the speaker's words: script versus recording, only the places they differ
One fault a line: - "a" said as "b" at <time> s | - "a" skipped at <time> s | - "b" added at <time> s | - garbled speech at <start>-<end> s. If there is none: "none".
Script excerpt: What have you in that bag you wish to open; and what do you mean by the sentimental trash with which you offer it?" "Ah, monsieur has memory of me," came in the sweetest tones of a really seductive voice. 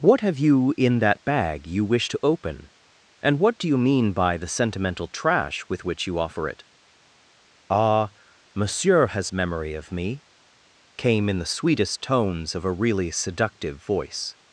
none